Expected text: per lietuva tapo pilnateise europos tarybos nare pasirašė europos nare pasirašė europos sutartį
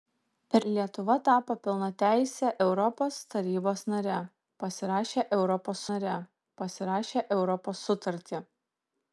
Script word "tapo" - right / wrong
right